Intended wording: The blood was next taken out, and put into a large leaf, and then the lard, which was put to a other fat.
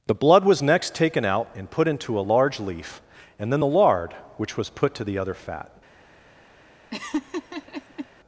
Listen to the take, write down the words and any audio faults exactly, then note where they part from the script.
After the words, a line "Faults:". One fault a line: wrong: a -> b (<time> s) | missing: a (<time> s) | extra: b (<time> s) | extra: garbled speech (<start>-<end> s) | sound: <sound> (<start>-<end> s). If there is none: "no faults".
The blood was next taken out, and put into a large leaf, and then the lard, which was put to the other fat.
Faults:
wrong: a -> the (5.0 s)
sound: laugh (6.9-8.1 s)